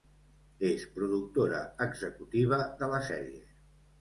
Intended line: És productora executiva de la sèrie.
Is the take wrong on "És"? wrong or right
right